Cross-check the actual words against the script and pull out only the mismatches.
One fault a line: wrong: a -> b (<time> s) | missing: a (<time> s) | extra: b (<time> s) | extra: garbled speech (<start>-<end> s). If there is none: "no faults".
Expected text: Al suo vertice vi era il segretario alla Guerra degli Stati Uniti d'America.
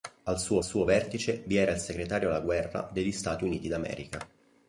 extra: suo (0.6 s)